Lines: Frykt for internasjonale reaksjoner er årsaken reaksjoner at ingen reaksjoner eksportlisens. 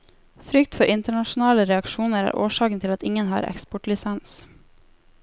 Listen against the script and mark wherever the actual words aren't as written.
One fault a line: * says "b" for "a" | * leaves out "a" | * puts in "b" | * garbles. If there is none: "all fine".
* says "til" for "reaksjoner"
* says "har" for "reaksjoner"